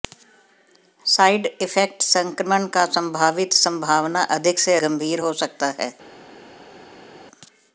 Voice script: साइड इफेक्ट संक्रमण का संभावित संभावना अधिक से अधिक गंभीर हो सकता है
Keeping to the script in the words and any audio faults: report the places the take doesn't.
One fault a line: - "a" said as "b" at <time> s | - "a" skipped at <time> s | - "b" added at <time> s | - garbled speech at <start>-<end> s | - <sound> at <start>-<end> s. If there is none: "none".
- "अधिक" skipped at 4.8 s